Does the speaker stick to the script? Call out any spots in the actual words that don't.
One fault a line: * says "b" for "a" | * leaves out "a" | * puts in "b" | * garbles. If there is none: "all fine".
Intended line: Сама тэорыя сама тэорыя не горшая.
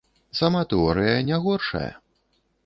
* leaves out "сама тэорыя"